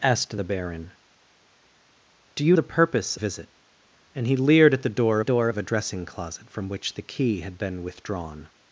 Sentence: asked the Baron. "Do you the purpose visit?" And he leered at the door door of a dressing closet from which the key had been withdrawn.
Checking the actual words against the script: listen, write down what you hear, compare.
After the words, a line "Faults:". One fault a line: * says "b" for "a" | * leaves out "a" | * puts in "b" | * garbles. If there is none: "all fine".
asked the Baron. "Do you the purpose visit?" And he leered at the door door of a dressing closet from which the key had been withdrawn.
Faults:
all fine